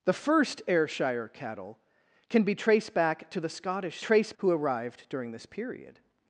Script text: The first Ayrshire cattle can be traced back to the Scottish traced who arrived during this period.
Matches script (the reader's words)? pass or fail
pass